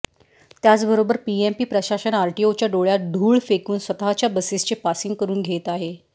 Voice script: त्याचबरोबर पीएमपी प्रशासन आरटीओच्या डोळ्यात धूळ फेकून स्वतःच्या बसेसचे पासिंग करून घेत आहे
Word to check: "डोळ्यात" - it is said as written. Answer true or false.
true